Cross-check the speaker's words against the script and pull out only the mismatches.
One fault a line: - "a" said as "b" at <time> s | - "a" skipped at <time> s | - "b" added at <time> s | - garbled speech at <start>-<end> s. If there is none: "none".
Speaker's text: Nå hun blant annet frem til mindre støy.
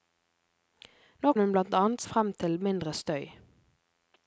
none